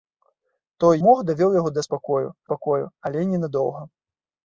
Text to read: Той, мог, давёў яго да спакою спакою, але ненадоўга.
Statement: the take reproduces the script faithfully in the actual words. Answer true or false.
true